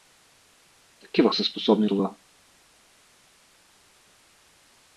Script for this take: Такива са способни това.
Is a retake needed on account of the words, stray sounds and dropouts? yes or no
no